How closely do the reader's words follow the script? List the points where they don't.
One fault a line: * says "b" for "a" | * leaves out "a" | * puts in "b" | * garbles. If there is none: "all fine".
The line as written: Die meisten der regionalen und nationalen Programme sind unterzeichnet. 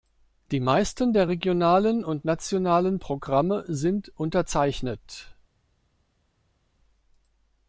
all fine